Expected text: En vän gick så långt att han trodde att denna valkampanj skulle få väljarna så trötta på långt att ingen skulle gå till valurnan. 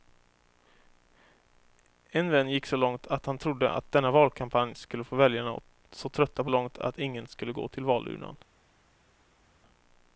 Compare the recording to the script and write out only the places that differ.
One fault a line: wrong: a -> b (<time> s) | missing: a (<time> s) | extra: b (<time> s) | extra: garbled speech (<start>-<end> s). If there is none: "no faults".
no faults